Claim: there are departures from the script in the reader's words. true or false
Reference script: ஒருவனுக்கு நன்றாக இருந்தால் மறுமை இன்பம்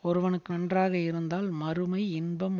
false